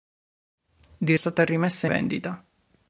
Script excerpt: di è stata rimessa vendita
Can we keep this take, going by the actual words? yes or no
yes